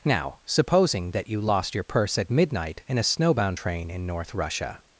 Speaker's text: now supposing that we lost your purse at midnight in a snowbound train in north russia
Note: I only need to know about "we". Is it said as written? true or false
false